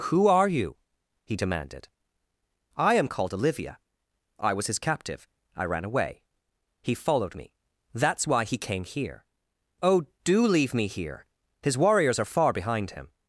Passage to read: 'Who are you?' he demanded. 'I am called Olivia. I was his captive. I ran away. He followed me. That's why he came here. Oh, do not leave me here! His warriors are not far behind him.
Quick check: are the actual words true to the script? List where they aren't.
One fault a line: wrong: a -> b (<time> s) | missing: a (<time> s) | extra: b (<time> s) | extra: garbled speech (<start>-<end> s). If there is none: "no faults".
missing: not (10.5 s)
missing: not (12.3 s)